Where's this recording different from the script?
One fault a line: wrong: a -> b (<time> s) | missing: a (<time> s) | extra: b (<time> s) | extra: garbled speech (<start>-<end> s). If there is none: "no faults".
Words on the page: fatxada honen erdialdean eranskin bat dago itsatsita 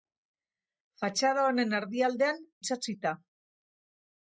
missing: eranskin bat dago (2.4 s)